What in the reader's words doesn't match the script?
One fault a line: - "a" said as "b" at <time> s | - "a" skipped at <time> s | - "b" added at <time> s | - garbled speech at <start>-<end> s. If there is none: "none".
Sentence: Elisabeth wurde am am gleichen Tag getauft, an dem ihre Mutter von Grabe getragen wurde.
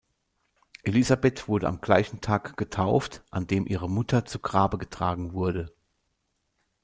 - "am" skipped at 1.8 s
- "von" said as "zu" at 4.2 s